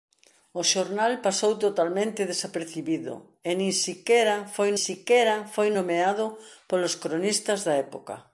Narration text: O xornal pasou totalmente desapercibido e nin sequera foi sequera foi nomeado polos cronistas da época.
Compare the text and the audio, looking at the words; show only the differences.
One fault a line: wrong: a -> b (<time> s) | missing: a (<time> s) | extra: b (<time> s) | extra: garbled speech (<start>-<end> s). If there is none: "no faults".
no faults